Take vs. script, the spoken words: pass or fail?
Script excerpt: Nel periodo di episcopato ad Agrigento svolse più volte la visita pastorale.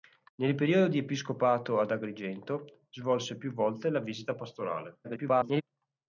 fail